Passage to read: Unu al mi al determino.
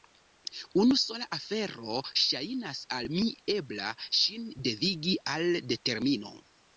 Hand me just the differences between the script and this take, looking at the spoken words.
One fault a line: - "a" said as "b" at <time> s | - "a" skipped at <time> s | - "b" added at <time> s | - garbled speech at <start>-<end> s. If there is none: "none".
- "sola afero ŝajnas" added at 1.0 s
- "ebla ŝin devigi" added at 3.6 s